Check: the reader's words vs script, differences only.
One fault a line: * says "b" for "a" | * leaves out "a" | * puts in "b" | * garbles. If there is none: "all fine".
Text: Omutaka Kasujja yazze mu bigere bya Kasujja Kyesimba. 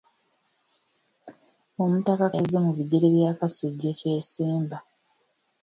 * leaves out "Kasujja"